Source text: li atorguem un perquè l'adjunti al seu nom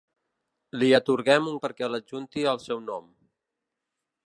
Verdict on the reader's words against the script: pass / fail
pass